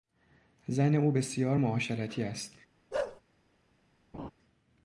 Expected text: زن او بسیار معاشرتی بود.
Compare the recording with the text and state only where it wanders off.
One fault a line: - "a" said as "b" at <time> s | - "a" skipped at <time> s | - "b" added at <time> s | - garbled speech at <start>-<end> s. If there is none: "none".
- "بود" said as "است" at 2.2 s